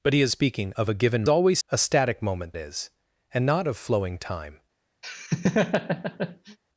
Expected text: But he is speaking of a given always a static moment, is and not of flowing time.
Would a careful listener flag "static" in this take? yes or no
no